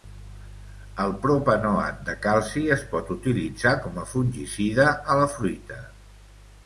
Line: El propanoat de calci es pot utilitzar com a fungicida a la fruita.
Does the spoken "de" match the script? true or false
true